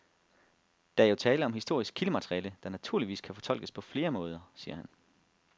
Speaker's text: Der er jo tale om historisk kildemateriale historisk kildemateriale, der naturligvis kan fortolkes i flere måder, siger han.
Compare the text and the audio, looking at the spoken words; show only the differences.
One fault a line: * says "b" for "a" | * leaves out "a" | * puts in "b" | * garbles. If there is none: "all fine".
* leaves out "historisk kildemateriale"
* says "på" for "i"